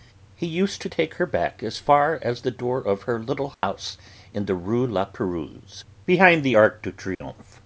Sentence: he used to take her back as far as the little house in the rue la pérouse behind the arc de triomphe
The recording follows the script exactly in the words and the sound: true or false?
false